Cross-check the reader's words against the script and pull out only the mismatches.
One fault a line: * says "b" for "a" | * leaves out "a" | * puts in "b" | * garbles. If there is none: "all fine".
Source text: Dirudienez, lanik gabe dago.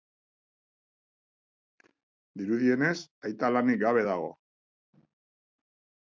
* puts in "aita"